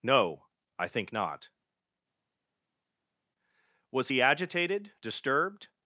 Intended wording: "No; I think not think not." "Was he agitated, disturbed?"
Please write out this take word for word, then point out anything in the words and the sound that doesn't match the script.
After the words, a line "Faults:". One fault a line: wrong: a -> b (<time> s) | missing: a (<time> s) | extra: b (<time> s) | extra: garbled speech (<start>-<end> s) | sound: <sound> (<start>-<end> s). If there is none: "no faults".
"No; I think not." "Was he agitated, disturbed?"
Faults:
missing: think not (1.5 s)